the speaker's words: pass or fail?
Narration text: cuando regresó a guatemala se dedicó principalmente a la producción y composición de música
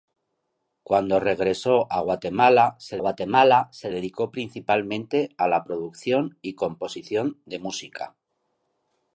fail